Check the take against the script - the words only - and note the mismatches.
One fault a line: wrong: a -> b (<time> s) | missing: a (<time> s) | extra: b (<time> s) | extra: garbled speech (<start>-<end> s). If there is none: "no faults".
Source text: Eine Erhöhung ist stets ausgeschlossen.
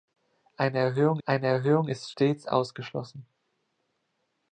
extra: eine Erhöhung (1.3 s)